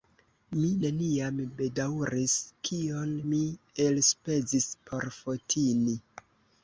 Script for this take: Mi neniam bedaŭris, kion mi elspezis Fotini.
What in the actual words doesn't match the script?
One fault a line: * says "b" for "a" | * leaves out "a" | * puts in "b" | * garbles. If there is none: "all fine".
* puts in "por"